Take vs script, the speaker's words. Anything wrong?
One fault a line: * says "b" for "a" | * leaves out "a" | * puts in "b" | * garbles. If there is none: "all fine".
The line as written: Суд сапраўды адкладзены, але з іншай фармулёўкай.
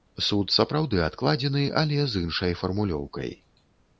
all fine